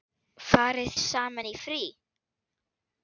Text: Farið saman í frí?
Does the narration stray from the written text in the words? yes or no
no